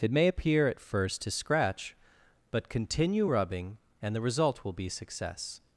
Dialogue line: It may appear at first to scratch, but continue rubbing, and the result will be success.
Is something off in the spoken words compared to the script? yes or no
no